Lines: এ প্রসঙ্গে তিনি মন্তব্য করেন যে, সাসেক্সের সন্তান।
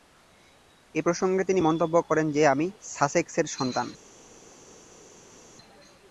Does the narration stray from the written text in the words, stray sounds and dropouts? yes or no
yes